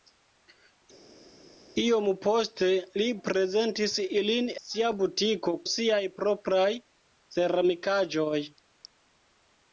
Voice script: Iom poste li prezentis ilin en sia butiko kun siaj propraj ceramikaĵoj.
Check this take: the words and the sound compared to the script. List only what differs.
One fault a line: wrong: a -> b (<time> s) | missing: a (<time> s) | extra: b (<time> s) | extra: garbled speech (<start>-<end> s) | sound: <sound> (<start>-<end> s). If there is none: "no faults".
missing: en (4.5 s)
missing: kun (5.5 s)